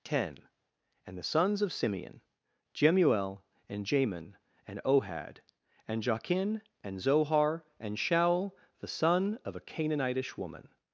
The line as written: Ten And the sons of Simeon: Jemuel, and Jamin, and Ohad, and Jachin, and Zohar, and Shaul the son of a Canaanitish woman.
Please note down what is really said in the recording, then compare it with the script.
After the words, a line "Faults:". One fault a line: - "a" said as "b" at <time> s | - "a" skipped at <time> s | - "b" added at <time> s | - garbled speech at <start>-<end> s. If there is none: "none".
Ten And the sons of Simeon: Jemuel, and Jamin, and Ohad, and Jachin, and Zohar, and Shaul the son of a Canaanitish woman.
Faults:
none